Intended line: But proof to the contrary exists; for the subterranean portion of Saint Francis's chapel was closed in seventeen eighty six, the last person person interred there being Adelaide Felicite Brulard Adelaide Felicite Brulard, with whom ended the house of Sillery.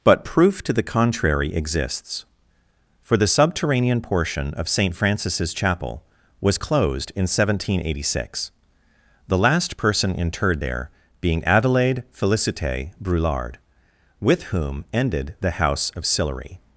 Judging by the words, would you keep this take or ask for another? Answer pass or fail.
fail